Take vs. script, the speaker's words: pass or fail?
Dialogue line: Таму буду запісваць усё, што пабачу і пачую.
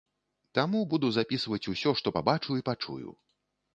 pass